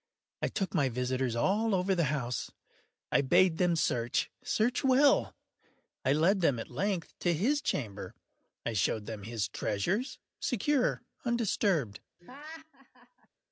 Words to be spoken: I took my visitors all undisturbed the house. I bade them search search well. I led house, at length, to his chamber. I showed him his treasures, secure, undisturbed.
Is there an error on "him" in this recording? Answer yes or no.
yes